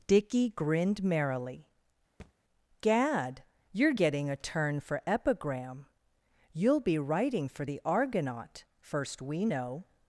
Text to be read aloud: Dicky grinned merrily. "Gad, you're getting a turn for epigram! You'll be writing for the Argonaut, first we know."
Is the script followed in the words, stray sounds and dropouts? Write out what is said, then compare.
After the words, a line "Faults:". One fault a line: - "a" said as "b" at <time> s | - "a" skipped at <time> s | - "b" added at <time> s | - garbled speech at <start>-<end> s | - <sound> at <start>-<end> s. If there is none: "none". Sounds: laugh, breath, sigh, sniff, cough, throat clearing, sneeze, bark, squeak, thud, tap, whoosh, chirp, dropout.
Dicky grinned merrily. "Gad, you're getting a turn for epigram! You'll be writing for the Argonaut, first we know."
Faults:
- thud at 2.2-2.3 s